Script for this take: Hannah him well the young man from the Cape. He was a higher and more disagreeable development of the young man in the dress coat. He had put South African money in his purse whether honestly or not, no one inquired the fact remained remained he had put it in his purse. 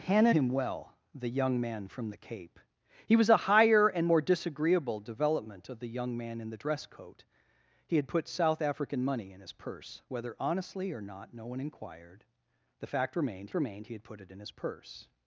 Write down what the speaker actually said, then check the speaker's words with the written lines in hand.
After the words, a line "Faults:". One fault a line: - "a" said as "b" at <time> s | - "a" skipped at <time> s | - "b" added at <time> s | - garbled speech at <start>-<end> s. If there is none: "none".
Hannah him well the young man from the Cape. He was a higher and more disagreeable development of the young man in the dress coat. He had put South African money in his purse whether honestly or not, no one inquired the fact remained remained he had put it in his purse.
Faults:
none